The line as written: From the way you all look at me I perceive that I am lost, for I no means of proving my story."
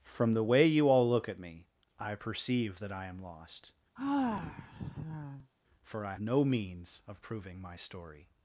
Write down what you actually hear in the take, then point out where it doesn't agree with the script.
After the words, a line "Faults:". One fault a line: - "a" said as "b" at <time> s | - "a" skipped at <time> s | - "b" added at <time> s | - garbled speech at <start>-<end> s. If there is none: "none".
From the way you all look at me I perceive that I am lost, for I no means of proving my story."
Faults:
none